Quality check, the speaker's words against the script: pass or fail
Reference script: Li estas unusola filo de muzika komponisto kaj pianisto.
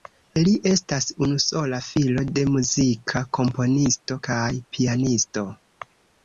pass